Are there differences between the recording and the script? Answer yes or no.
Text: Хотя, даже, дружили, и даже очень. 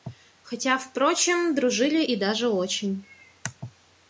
yes